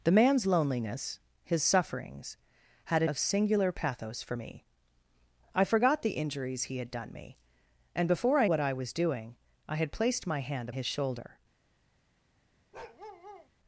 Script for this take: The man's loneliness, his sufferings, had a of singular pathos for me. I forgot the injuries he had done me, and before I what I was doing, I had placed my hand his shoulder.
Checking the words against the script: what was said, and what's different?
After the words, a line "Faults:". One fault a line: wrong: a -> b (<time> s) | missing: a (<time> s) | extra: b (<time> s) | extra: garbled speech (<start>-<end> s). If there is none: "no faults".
The man's loneliness, his sufferings, had a of singular pathos for me. I forgot the injuries he had done me, and before I what I was doing, I had placed my hand his shoulder.
Faults:
no faults